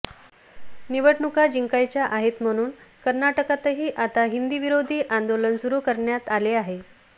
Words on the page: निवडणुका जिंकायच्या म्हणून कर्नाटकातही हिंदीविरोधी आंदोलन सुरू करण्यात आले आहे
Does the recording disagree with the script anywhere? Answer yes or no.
yes